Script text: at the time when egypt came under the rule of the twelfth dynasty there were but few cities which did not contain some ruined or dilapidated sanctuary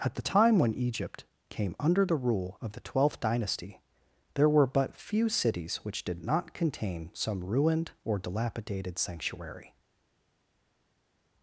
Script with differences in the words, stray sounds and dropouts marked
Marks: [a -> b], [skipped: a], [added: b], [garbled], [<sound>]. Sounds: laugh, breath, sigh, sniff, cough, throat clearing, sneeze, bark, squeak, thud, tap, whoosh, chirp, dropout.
at the time when egypt came under the rule of the twelfth dynasty there were but few cities which did not contain some ruined or dilapidated sanctuary